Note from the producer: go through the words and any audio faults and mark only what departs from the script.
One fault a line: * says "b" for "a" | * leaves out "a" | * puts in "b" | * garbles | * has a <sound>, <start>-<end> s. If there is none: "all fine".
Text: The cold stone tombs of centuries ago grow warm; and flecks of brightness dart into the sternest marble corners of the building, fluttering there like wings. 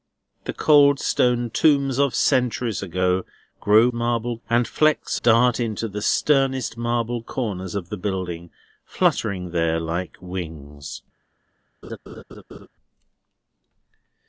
* says "marble" for "warm"
* leaves out "of brightness"
* has a laugh, 11.8-12.7 s